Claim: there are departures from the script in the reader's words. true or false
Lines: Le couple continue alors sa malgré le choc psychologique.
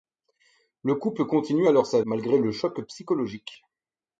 false